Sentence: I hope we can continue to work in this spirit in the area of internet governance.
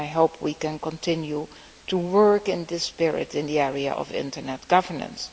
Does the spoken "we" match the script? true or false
true